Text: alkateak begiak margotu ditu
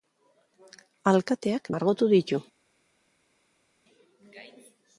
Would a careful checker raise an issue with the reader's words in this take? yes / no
yes